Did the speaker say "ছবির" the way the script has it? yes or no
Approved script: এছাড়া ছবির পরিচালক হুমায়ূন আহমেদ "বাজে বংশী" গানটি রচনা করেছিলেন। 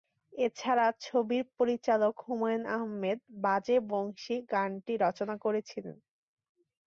yes